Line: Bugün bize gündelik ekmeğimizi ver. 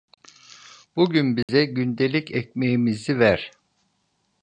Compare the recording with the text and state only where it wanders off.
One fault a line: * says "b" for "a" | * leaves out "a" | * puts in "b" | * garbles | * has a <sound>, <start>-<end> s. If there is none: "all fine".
* has a dropout, 1.4-1.5 s